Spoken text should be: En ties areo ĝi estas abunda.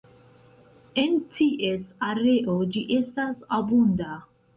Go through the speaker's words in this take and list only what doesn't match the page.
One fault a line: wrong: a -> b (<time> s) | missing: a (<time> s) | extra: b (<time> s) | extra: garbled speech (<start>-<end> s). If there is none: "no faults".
no faults